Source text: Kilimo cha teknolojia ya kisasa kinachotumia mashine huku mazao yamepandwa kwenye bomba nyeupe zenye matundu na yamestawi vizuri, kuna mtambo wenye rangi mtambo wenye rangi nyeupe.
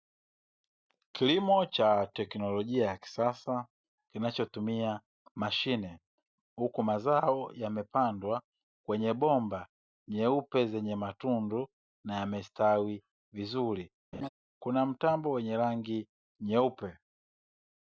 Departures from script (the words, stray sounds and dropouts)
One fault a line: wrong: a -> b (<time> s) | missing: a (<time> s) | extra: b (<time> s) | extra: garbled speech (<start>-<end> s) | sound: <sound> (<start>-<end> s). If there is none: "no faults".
sound: laugh (14.1-14.3 s)
missing: mtambo wenye rangi (16.1 s)